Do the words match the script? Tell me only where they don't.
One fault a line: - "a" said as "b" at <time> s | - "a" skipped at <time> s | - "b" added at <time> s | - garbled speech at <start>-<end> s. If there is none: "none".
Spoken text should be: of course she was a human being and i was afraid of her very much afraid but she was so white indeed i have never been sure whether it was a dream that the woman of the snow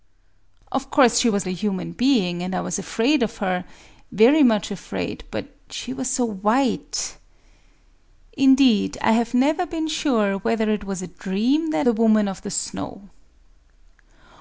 none